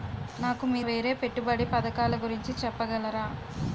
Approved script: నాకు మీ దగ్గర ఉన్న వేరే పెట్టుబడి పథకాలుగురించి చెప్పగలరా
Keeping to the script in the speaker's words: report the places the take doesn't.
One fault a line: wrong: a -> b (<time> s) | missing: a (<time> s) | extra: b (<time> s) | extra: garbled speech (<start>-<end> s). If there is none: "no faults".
missing: దగ్గర ఉన్న (0.8 s)